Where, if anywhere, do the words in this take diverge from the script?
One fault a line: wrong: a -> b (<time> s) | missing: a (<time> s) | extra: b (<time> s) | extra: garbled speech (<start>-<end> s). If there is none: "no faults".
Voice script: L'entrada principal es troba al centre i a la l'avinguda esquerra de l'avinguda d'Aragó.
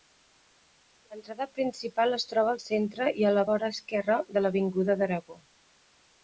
wrong: l'avinguda -> vora (3.5 s)